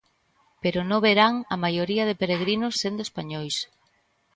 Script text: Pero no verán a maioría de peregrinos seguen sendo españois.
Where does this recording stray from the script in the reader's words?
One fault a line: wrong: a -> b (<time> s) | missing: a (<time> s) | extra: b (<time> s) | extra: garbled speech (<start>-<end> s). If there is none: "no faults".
missing: seguen (2.7 s)